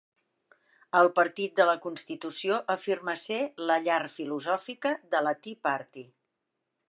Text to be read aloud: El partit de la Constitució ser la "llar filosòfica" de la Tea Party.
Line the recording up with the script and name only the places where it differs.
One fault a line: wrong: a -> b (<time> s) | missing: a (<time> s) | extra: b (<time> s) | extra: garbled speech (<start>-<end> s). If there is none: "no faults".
extra: afirma (2.8 s)